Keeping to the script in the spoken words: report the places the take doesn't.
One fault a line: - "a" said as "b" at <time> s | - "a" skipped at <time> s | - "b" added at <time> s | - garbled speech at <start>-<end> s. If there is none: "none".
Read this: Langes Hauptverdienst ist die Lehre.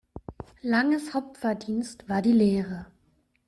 - "ist" said as "war" at 2.1 s